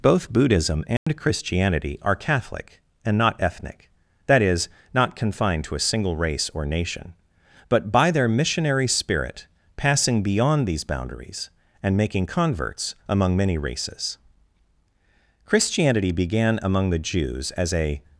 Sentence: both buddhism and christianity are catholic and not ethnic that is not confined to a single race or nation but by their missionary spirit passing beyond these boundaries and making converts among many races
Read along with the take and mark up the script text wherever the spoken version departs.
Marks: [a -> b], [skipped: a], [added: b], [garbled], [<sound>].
both buddhism and [dropout] christianity are catholic and not ethnic that is not confined to a single race or nation but by their missionary spirit passing beyond these boundaries and making converts among many races [added: christianity began among the jews as a]